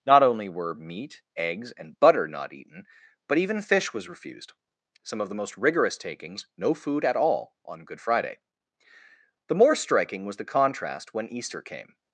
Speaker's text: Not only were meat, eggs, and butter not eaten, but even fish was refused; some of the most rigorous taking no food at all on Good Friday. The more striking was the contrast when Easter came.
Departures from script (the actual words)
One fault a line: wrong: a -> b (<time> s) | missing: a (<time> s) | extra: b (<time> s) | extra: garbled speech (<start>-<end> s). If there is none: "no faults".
wrong: taking -> takings (6.0 s)